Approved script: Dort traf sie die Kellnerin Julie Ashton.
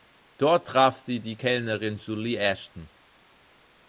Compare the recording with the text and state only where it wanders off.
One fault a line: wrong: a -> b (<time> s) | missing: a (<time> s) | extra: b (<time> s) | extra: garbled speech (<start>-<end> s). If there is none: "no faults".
no faults